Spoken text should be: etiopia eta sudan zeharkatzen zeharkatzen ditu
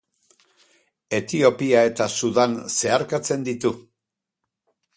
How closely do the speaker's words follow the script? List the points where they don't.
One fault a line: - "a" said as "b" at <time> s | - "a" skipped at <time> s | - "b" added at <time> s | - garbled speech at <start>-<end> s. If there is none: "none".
- "zeharkatzen" skipped at 3.5 s